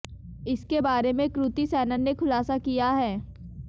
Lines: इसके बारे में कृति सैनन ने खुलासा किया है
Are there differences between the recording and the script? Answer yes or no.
no